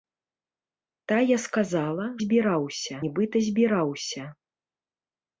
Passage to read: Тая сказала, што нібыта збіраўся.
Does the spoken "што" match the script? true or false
false